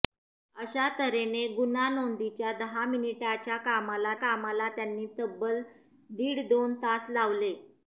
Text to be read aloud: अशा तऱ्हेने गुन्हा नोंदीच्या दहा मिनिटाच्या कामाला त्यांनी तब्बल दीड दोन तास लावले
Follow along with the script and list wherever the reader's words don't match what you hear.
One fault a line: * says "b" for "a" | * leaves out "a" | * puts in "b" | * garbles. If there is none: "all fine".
* puts in "कामाला"